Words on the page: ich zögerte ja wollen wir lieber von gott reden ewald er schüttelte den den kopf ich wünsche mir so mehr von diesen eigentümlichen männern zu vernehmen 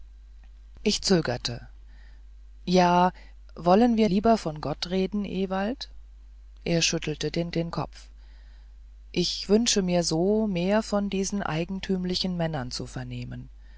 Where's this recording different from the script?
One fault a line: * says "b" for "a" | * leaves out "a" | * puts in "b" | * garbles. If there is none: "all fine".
all fine